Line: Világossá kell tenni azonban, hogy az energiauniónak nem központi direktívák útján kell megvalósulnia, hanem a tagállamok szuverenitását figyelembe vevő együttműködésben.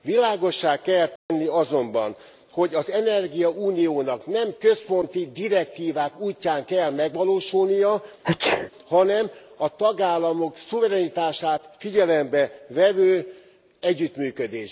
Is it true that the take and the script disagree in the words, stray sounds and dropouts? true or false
true